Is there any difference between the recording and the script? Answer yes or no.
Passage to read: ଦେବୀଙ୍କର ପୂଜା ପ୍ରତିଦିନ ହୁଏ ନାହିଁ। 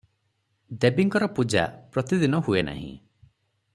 no